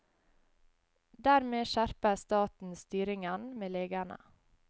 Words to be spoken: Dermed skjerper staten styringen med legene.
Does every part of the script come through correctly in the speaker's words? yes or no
yes